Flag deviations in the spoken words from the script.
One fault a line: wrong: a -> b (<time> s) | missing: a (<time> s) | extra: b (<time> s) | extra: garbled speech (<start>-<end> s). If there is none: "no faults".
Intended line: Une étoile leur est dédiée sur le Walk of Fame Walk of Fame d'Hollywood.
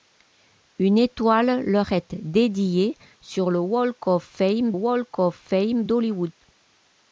no faults